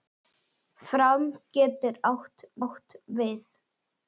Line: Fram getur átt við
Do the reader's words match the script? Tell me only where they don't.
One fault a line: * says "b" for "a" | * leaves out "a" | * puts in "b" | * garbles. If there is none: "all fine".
* puts in "átt"